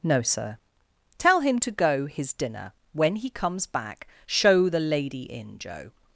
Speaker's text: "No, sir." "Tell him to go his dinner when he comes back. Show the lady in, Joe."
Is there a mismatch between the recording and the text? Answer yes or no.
no